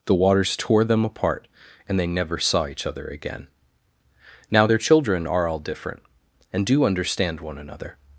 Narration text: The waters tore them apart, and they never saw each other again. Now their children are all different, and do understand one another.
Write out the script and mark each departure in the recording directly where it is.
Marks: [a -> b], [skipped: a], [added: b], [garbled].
The waters tore them apart, and they never saw each other again. Now their children are all different, and do understand one another.